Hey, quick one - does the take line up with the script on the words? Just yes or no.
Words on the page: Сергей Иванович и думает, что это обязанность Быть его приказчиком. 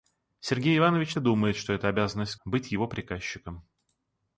yes